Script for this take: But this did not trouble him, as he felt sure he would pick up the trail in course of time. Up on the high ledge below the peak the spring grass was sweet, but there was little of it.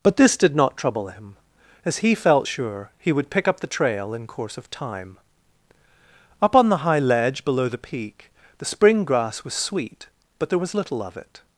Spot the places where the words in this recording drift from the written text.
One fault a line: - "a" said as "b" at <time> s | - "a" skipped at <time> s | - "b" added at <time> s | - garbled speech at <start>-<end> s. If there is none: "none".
none